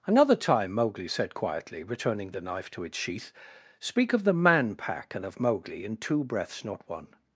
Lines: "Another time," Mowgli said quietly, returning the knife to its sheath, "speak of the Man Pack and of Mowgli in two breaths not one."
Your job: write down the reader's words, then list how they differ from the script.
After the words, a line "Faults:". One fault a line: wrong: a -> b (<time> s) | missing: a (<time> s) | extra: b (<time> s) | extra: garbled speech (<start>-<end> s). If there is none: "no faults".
"Another time," Mowgli said quietly, returning the knife to its sheath, "speak of the Man Pack and of Mowgli in two breaths not one."
Faults:
no faults